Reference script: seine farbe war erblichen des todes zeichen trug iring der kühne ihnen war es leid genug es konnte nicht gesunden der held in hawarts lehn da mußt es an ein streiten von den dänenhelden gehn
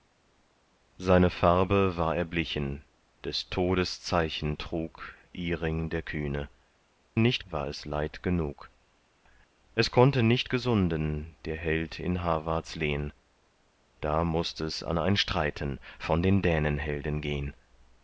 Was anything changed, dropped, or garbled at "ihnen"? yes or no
yes